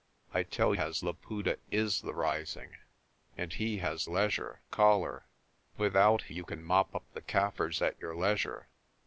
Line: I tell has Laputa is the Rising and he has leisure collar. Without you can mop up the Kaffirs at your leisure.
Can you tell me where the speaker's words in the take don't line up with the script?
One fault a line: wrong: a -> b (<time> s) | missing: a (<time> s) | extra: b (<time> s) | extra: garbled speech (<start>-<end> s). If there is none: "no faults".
no faults